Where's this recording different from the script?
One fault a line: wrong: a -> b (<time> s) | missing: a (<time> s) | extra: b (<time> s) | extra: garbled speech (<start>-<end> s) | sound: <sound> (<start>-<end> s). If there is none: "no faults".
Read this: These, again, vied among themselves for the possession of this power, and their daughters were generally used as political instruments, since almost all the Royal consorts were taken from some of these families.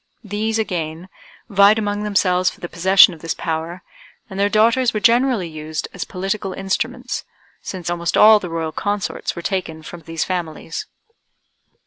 missing: some (10.0 s)